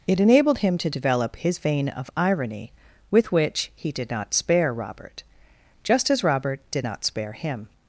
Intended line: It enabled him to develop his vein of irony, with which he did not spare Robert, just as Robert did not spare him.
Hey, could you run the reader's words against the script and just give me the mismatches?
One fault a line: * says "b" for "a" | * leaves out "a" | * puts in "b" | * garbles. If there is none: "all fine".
all fine